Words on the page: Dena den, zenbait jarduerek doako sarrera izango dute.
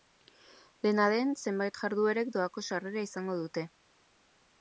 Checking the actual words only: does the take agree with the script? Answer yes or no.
yes